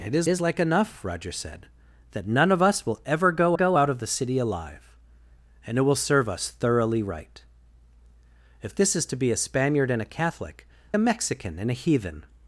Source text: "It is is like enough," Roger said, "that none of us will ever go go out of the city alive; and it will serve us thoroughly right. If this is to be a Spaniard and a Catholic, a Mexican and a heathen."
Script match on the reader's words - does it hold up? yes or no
yes